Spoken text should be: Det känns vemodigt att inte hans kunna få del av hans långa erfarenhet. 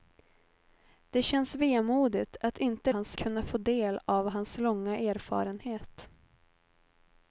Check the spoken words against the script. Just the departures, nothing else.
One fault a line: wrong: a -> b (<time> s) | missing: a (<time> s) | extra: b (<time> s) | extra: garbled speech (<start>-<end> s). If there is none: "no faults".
no faults